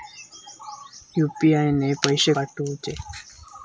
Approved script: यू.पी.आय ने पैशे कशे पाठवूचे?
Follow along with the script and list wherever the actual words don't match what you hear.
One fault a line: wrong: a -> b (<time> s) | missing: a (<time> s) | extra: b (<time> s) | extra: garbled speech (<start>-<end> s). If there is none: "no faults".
missing: कशे (2.3 s)